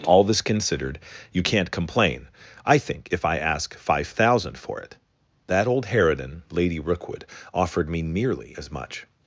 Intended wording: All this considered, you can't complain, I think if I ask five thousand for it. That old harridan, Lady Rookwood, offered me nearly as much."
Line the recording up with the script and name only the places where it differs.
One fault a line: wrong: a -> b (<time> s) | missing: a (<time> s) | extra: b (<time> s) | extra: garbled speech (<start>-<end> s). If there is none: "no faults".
no faults